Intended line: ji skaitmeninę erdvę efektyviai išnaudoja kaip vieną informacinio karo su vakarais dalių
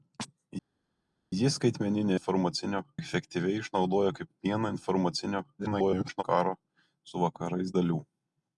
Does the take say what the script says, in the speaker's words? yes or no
no